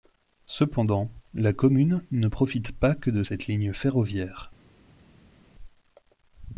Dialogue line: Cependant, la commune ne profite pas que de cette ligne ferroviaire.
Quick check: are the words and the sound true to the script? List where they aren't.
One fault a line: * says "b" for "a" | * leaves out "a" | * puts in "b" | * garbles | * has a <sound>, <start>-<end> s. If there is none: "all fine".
all fine